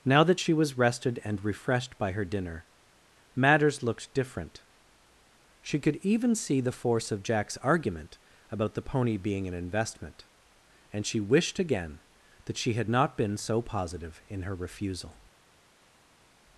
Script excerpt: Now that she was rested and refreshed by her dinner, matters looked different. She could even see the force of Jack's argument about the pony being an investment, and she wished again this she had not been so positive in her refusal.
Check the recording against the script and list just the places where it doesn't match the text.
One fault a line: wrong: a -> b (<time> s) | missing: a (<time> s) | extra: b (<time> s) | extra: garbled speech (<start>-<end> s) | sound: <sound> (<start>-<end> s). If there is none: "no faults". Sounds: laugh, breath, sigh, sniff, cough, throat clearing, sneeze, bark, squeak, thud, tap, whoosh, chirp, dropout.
wrong: this -> that (12.5 s)